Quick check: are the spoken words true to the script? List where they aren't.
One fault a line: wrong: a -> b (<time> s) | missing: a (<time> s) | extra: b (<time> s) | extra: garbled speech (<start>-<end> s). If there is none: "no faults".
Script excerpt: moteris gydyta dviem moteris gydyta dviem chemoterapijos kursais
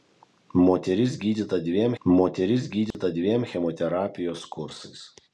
no faults